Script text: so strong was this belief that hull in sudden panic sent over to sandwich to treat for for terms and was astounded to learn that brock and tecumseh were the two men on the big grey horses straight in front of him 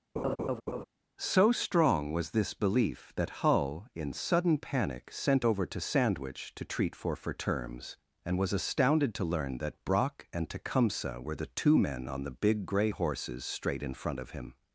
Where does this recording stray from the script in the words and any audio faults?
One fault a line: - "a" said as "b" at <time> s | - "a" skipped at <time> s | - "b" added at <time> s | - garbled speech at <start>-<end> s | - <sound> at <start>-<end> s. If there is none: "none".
- laugh at 0.2-0.8 s